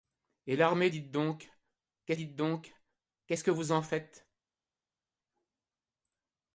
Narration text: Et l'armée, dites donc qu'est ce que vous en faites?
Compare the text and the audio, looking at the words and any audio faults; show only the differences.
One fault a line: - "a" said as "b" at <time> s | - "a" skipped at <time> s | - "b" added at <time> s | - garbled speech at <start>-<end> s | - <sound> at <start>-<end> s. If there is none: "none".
- "dites donc qu'est" added at 2.1 s